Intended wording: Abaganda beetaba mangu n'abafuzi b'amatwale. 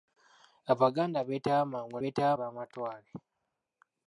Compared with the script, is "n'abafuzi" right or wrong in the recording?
wrong